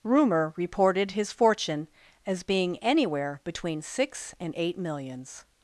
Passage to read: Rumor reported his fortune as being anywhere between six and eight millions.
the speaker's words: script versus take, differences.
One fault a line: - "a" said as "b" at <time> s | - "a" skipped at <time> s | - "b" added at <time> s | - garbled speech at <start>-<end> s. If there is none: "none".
none